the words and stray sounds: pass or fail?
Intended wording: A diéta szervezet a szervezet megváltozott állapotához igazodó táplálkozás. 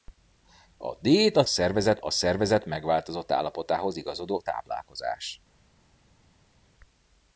pass